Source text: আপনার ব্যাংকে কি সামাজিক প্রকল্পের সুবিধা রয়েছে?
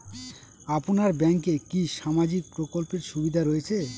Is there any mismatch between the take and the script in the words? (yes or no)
no